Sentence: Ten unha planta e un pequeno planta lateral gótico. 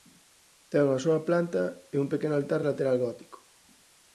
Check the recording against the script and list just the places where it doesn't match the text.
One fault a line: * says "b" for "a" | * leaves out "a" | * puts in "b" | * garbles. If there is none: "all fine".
* puts in "soa"
* says "altar" for "planta"